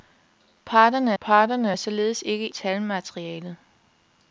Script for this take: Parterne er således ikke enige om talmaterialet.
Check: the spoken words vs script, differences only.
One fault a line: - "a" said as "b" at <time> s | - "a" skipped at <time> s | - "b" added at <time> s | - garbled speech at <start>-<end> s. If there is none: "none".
- "parterne" added at 1.2 s
- "enige om" skipped at 2.5 s